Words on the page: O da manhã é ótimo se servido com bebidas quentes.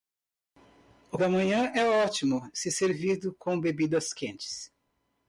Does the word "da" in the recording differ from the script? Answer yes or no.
no